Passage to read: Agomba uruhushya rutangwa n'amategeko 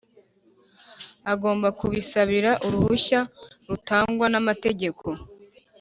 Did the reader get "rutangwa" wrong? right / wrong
right